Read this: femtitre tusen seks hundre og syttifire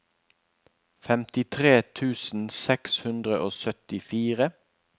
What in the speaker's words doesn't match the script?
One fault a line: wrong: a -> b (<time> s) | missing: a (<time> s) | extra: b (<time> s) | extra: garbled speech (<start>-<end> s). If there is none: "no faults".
no faults